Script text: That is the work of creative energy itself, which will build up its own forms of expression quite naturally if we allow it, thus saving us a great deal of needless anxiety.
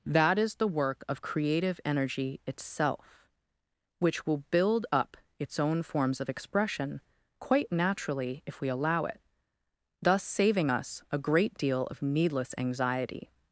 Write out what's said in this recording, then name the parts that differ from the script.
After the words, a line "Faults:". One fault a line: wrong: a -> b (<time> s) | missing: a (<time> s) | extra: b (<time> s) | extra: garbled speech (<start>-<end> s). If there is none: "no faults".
That is the work of creative energy itself, which will build up its own forms of expression quite naturally if we allow it, thus saving us a great deal of needless anxiety.
Faults:
no faults